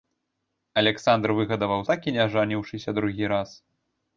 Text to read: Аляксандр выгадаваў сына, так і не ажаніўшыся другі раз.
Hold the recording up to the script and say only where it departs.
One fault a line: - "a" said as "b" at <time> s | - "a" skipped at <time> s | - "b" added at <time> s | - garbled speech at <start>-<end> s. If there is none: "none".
- "сына" skipped at 1.8 s